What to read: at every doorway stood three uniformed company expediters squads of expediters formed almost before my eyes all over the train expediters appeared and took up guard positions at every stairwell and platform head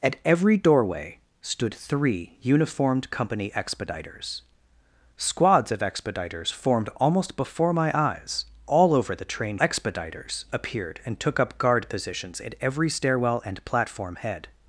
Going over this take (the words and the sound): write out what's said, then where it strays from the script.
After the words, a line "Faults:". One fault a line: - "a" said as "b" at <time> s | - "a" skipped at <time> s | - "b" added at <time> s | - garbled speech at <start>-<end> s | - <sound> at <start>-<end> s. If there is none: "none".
at every doorway stood three uniformed company expediters squads of expediters formed almost before my eyes all over the train expediters appeared and took up guard positions at every stairwell and platform head
Faults:
none